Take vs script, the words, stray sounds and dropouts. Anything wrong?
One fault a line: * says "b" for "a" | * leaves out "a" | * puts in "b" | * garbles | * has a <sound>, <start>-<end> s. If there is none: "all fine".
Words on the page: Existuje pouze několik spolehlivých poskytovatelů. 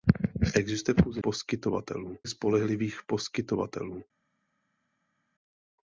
* says "poskytovatelů" for "několik"